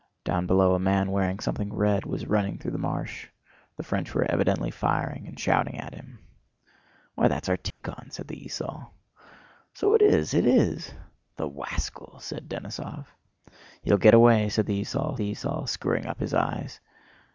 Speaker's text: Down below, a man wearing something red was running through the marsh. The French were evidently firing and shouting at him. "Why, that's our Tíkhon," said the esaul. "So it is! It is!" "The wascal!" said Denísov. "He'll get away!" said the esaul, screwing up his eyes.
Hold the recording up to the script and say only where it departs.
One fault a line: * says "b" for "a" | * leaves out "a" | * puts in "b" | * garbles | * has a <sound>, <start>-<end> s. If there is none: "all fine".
* has a dropout, 7.7-7.8 s
* puts in "the esaul"